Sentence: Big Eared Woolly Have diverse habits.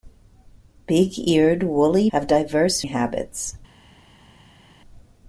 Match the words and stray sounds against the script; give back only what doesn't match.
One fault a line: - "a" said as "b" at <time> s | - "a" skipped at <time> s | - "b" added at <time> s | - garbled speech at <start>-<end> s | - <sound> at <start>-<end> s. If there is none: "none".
none